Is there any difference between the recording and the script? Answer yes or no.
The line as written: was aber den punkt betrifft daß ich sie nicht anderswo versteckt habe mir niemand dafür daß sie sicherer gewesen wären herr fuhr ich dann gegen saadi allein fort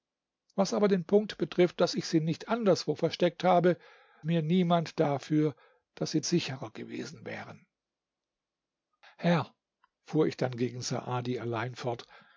no